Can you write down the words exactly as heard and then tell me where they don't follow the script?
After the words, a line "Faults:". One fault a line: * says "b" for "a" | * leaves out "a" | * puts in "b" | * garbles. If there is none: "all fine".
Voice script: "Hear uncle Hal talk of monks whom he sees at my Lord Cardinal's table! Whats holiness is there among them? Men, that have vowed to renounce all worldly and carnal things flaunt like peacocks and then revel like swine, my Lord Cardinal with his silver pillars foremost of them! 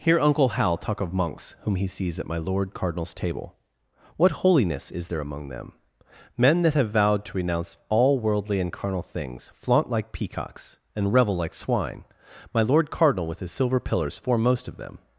"Hear uncle Hal talk of monks whom he sees at my Lord Cardinal's table! What holiness is there among them? Men, that have vowed to renounce all worldly and carnal things flaunt like peacocks and revel like swine, my Lord Cardinal with his silver pillars foremost of them!
Faults:
* says "What" for "Whats"
* leaves out "then"